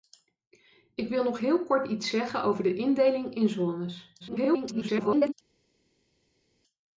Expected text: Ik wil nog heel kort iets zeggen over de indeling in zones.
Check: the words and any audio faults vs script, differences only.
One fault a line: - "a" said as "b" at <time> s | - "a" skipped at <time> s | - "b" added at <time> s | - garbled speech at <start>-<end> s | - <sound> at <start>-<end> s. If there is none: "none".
- garbled speech at 4.2-5.3 s